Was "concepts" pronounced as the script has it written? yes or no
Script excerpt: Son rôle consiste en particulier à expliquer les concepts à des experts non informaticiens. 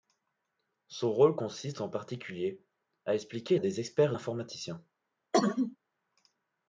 no